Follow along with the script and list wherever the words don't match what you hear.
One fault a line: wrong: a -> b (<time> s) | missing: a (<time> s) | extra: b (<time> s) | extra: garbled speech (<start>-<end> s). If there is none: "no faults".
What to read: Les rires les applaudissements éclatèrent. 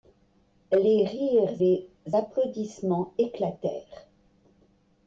no faults